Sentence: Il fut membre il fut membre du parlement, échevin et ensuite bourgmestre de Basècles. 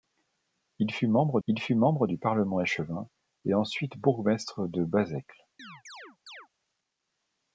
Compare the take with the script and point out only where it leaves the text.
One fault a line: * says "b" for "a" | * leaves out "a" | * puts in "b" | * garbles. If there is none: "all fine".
all fine